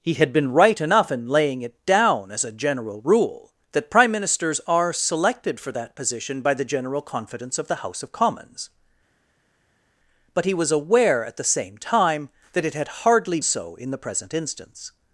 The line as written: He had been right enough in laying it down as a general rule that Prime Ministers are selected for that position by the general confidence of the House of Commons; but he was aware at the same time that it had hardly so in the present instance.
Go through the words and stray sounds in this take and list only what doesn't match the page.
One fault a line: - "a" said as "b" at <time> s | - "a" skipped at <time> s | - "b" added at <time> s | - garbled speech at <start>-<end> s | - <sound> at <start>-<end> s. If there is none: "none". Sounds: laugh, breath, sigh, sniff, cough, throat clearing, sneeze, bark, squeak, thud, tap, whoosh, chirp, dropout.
none